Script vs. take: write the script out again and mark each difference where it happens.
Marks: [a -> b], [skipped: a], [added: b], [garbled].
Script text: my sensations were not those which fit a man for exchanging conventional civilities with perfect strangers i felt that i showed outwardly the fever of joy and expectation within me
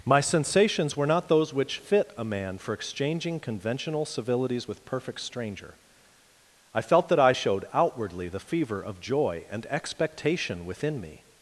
my sensations were not those which fit a man for exchanging conventional civilities with perfect [strangers -> stranger] i felt that i showed outwardly the fever of joy and expectation within me